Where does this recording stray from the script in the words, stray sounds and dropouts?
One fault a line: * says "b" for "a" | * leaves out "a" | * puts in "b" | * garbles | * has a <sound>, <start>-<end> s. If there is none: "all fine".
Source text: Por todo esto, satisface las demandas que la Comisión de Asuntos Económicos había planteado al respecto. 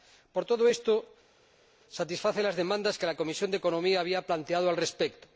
all fine